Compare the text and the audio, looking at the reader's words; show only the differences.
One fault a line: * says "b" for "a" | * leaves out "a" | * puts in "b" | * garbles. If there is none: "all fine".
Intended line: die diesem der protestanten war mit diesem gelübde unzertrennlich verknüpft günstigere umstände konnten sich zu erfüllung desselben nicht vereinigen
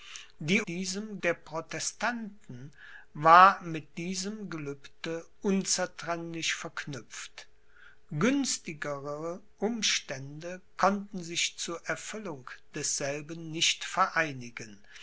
all fine